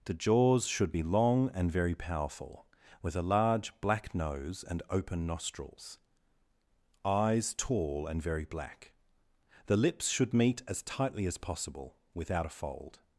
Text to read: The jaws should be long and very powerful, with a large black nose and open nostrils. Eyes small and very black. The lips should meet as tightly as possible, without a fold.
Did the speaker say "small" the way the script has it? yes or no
no